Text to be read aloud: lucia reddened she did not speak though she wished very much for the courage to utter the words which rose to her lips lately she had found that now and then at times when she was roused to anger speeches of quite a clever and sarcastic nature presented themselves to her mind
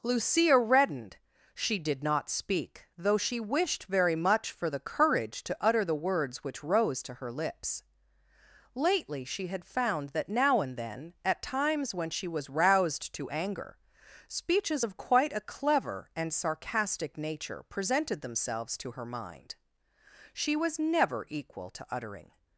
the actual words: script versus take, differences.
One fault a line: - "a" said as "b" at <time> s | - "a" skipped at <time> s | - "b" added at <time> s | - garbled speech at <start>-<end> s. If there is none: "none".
- "she was never equal to uttering" added at 20.3 s